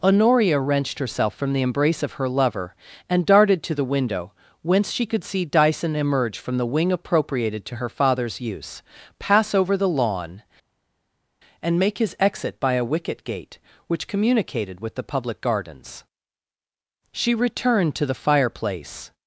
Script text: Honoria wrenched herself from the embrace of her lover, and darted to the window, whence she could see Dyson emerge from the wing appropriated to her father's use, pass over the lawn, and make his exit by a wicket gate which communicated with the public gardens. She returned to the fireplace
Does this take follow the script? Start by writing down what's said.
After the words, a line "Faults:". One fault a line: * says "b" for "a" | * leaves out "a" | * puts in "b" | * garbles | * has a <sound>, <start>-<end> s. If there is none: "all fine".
Honoria wrenched herself from the embrace of her lover, and darted to the window, whence she could see Dyson emerge from the wing appropriated to her father's use, pass over the lawn, and make his exit by a wicket gate which communicated with the public gardens. She returned to the fireplace
Faults:
all fine